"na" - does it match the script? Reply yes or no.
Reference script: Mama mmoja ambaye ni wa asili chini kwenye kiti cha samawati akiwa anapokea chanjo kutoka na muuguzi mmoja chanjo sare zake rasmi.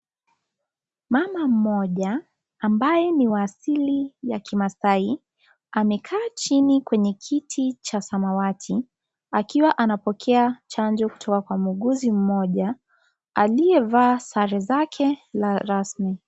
no